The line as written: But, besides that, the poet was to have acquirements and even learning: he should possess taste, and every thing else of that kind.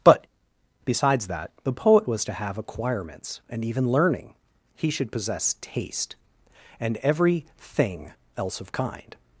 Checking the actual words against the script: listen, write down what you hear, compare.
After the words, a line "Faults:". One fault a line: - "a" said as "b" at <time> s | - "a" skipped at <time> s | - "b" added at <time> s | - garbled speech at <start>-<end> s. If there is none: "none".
But, besides that, the poet was to have acquirements and even learning: he should possess taste, and every thing else of kind.
Faults:
- "that" skipped at 8.7 s